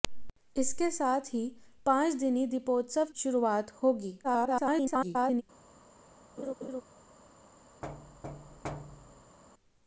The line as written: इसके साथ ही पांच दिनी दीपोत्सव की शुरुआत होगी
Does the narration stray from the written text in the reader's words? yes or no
yes